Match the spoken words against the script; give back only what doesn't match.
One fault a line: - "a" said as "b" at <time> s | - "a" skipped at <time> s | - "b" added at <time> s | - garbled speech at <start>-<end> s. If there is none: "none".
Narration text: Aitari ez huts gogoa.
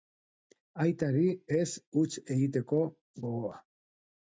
- "egiteko" added at 2.4 s